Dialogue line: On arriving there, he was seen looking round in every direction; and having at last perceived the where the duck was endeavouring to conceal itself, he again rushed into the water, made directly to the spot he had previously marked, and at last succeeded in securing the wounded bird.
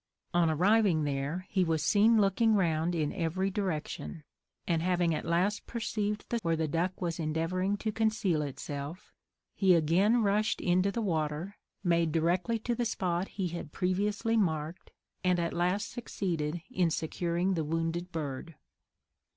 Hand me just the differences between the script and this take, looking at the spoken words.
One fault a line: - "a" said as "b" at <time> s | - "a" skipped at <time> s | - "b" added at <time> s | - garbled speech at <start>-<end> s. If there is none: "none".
none